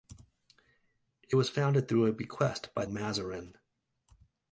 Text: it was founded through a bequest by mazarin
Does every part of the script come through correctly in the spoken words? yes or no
yes